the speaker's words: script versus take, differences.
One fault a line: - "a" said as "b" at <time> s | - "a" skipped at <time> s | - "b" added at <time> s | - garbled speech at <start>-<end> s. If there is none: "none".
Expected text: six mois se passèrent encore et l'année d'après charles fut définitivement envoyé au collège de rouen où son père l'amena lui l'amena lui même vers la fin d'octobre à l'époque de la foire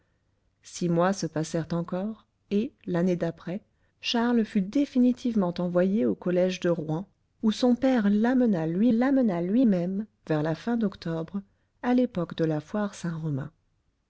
none